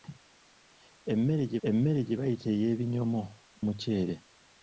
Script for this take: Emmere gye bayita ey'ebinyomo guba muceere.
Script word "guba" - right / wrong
wrong